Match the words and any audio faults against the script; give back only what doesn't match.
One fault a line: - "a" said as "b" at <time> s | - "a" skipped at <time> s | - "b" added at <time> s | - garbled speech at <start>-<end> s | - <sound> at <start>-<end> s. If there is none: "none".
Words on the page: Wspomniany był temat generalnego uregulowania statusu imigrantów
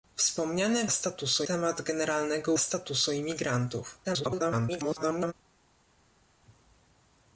- "był" said as "statusu" at 0.9 s
- "uregulowania" skipped at 2.5 s
- garbled speech at 4.0-5.3 s